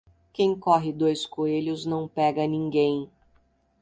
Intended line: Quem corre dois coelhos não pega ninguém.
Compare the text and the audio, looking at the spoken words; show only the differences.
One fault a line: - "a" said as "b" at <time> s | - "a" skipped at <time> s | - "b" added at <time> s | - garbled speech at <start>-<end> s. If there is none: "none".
none